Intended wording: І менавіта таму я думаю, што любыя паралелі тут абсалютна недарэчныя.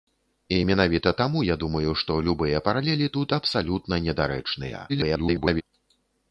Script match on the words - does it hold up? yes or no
no